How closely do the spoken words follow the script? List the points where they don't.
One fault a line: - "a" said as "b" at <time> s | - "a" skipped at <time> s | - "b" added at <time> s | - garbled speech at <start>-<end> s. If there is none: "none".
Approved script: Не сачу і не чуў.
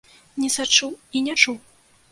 none